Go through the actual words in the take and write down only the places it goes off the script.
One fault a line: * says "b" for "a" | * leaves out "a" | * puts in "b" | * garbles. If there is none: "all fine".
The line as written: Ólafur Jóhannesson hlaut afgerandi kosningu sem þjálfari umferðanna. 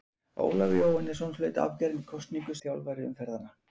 * leaves out "sem"